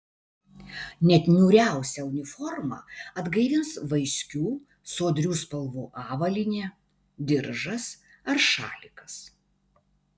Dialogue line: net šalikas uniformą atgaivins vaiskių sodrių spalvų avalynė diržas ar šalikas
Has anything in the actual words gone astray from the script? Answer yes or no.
yes